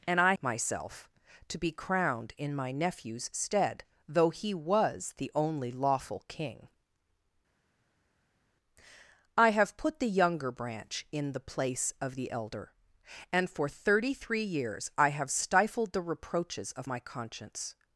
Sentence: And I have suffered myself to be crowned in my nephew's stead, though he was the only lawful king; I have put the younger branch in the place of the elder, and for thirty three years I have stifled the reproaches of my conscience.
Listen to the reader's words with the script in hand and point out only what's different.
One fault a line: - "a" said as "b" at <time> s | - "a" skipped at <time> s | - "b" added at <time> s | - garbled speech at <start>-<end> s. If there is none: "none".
- "have suffered" skipped at 0.3 s